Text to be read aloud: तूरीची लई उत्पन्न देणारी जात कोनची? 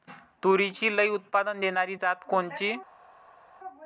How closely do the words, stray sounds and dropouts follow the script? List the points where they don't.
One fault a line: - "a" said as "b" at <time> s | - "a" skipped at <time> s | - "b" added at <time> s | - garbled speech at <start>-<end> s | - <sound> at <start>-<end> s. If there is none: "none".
none